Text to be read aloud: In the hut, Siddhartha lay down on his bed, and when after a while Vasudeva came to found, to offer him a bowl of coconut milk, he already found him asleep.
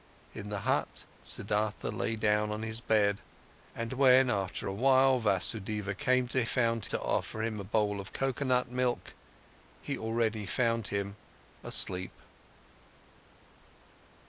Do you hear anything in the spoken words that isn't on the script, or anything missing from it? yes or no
no